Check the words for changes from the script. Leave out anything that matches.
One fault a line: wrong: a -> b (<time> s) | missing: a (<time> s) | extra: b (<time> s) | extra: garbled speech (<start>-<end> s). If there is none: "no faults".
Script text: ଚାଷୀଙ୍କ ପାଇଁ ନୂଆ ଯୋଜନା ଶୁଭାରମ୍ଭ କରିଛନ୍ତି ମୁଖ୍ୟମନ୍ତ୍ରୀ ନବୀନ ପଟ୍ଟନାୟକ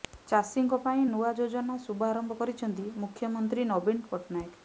no faults